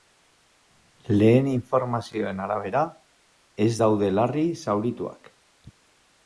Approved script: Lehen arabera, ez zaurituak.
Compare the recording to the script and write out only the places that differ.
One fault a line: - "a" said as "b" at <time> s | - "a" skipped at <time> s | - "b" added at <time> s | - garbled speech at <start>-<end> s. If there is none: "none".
- "informazioen" added at 1.5 s
- "daude larri" added at 3.8 s